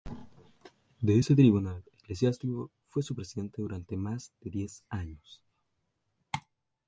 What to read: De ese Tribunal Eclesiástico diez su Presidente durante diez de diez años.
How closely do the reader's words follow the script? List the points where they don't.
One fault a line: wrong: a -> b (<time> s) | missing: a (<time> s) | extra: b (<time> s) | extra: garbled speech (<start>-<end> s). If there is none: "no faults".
wrong: diez -> fue (2.8 s)
wrong: diez -> más (4.0 s)